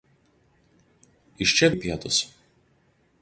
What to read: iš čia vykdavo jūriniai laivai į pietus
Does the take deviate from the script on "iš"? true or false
false